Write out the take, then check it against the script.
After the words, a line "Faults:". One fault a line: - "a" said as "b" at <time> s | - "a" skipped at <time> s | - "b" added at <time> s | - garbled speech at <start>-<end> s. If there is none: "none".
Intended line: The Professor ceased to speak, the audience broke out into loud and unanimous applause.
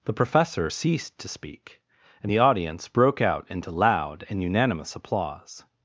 The Professor ceased to speak, and the audience broke out into loud and unanimous applause.
Faults:
- "and" added at 2.2 s